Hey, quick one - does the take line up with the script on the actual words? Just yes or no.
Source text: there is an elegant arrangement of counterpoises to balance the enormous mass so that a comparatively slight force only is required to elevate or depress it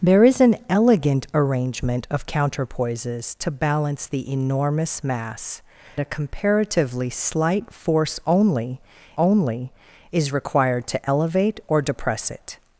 no